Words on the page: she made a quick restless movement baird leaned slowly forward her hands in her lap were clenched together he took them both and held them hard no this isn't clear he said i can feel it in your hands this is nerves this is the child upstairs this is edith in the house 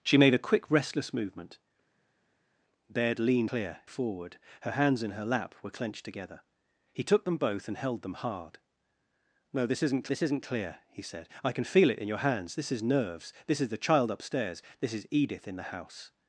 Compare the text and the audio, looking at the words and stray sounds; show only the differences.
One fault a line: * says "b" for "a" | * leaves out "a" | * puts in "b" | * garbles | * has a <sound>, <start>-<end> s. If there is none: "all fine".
* says "clear" for "slowly"
* puts in "this isn't"